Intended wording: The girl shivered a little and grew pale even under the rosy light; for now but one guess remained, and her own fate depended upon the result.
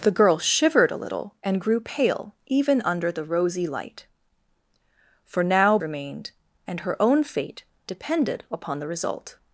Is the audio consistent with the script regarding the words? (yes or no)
no